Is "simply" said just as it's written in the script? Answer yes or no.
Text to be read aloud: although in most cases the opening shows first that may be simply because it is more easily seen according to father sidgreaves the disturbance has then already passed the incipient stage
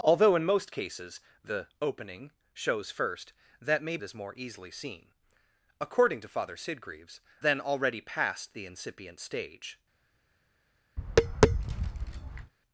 no